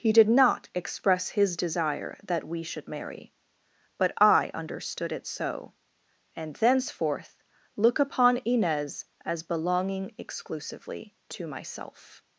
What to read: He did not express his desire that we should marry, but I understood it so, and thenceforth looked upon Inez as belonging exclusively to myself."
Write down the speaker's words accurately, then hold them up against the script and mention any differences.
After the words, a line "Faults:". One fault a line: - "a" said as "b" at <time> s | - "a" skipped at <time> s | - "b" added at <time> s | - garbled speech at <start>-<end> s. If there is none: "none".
He did not express his desire that we should marry, but I understood it so, and thenceforth look upon Inez as belonging exclusively to myself."
Faults:
- "looked" said as "look" at 7.8 s